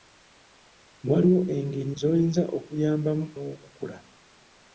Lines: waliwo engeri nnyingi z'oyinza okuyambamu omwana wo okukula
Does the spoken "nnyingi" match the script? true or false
false